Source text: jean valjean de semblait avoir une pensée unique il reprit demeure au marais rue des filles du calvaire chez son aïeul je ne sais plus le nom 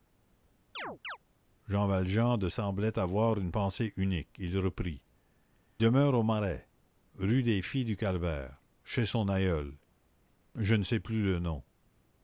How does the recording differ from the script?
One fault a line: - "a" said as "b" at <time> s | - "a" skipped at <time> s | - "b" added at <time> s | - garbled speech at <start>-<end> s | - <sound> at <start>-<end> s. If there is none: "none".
- chirp at 0.7-1.2 s